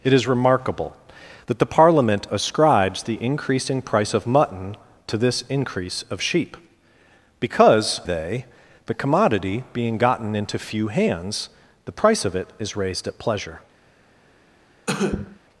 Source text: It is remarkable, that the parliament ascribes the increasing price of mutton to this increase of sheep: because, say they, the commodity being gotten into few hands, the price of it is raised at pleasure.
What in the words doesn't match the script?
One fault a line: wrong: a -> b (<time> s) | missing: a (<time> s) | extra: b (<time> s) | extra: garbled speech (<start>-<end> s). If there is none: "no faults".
missing: say (8.0 s)